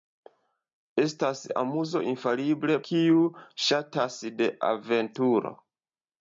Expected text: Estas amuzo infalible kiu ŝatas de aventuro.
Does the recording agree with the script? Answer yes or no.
yes